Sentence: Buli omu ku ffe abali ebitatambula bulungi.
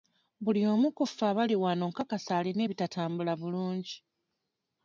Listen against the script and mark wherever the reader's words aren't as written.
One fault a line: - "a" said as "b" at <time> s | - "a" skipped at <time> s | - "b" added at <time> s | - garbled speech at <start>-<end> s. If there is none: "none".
- "wano nkakasa alina" added at 1.6 s